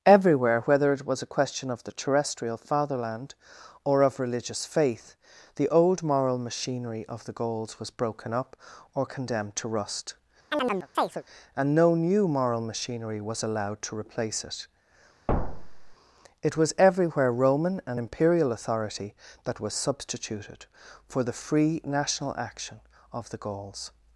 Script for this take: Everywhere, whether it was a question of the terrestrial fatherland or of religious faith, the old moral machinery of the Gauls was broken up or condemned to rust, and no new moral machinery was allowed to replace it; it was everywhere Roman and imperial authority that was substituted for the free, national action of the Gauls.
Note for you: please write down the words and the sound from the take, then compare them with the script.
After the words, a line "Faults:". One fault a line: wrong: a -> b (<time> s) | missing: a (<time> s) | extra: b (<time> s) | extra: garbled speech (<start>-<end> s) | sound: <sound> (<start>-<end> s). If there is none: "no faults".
Everywhere, whether it was a question of the terrestrial fatherland or of religious faith, the old moral machinery of the Gauls was broken up or condemned to rust, and no new moral machinery was allowed to replace it; it was everywhere Roman and imperial authority that was substituted for the free, national action of the Gauls.
Faults:
sound: chirp (10.5-11.2 s)
sound: thud (15.3-15.9 s)